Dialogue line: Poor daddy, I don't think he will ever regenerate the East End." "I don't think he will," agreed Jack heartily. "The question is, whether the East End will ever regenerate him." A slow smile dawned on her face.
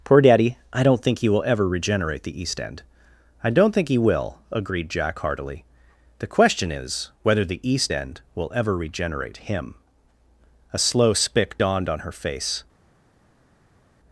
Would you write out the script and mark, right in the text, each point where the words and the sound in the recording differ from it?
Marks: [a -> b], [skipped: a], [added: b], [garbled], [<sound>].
Poor daddy, I don't think he will ever regenerate the East End." "I don't think he will," agreed Jack heartily. "The question is, whether the East End will ever regenerate him." A slow [smile -> spick] dawned on her face.